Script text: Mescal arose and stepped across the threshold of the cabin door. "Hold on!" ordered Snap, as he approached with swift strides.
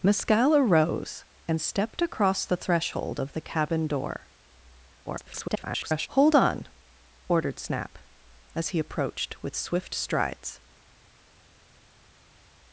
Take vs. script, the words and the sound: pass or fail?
fail